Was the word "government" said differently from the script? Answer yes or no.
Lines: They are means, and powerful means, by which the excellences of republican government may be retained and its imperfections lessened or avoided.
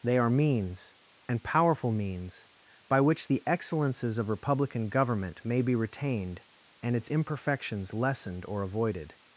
no